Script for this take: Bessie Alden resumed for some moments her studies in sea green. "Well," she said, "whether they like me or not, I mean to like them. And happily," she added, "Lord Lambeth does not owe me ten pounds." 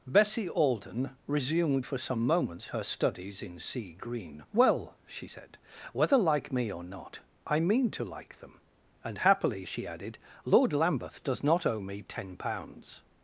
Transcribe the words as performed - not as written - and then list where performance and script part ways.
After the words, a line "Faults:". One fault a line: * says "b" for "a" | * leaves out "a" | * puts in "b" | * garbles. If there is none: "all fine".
Bessie Alden resumed for some moments her studies in sea green. "Well," she said, "whether like me or not, I mean to like them. And happily," she added, "Lord Lambeth does not owe me ten pounds."
Faults:
* leaves out "they"